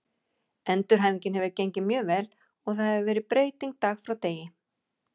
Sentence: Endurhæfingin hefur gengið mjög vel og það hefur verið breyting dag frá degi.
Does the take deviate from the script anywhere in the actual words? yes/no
no